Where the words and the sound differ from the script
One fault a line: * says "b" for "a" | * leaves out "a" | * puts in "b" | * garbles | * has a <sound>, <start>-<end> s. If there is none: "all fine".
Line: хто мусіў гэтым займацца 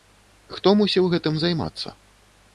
all fine